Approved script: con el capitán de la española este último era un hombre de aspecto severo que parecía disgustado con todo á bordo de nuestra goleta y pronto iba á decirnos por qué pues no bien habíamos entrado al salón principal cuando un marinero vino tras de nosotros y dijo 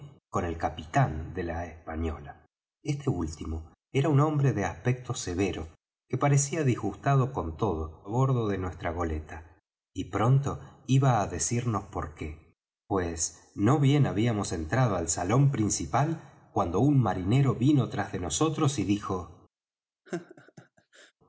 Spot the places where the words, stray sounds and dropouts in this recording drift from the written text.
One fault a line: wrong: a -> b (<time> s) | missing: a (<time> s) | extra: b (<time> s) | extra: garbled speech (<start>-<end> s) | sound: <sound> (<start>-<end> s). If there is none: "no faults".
sound: laugh (20.1-21.1 s)